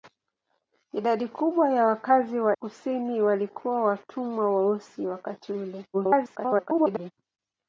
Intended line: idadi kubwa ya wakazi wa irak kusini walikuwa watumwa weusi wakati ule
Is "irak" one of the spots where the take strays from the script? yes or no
yes